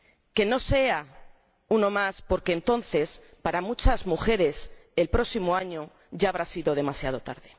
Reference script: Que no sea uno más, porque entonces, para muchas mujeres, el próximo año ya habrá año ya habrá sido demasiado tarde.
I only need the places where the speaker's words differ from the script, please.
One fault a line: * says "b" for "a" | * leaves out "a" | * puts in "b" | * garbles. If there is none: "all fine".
* leaves out "año ya habrá"